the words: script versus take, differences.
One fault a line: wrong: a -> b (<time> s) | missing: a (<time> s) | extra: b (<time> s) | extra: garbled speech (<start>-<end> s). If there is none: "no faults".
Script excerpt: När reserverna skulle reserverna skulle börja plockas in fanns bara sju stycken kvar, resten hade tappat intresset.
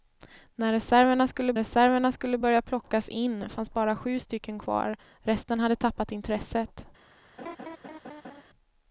no faults